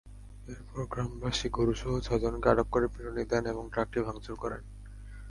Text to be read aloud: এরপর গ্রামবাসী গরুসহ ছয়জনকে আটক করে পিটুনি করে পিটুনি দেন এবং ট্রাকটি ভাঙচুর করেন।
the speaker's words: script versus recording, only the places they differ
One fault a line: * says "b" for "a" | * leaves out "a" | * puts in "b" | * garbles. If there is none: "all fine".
* leaves out "করে পিটুনি"